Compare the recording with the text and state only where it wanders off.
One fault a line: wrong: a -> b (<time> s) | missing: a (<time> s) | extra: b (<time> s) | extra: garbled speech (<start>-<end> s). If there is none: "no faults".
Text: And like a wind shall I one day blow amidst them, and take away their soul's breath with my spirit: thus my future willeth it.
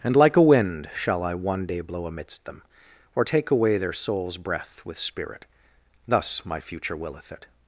wrong: and -> or (3.1 s)
missing: my (5.0 s)